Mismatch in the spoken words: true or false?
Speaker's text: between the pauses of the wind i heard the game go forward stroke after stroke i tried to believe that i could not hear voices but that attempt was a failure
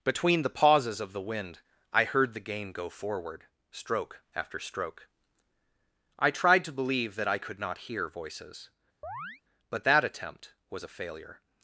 false